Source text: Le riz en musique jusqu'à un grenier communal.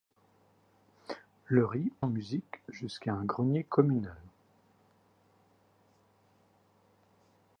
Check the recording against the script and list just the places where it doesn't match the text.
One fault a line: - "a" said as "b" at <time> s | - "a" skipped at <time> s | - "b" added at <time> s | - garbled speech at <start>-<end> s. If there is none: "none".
none